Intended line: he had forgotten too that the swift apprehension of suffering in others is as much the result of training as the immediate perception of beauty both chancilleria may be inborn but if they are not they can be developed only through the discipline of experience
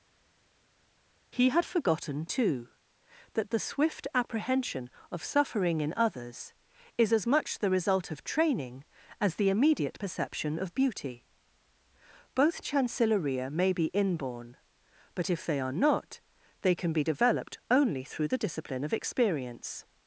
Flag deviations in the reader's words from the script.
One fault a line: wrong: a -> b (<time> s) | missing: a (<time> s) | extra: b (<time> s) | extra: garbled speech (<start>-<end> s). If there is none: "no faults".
no faults